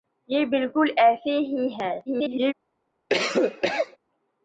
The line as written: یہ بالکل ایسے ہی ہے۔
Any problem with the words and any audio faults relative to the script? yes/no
yes